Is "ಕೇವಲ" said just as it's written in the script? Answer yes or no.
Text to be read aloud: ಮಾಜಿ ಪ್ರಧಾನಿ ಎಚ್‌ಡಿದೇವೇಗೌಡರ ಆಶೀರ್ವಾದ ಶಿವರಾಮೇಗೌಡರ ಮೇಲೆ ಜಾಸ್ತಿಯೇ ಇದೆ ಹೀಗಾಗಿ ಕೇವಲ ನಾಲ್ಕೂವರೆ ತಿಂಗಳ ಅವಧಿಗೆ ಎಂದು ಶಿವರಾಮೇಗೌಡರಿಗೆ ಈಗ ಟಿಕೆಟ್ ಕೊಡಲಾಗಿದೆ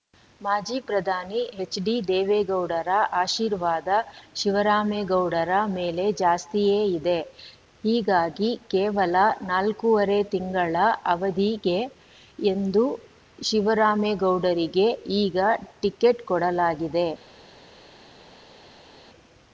yes